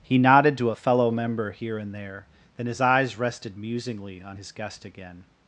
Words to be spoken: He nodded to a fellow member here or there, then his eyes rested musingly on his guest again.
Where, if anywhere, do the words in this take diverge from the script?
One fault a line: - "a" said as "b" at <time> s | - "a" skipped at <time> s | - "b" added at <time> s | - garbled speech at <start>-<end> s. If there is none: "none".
- "or" said as "and" at 1.8 s